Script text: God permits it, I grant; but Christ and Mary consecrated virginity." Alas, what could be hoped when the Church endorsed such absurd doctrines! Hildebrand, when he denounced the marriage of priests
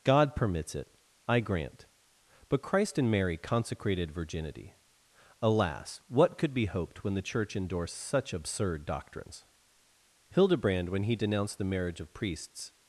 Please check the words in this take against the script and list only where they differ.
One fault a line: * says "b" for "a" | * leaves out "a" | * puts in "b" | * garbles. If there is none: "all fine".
all fine